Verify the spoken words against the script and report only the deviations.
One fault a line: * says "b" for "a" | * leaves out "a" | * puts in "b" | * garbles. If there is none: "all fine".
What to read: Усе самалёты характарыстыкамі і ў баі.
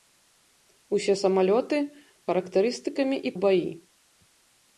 all fine